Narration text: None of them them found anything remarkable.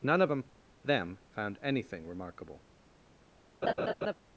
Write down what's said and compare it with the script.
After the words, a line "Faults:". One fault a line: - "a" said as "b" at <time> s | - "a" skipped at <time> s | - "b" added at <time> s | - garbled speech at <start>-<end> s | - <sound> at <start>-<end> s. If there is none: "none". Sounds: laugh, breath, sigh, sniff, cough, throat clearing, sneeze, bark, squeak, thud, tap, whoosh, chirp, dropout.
None of them them found anything remarkable.
Faults:
- laugh at 3.6-4.1 s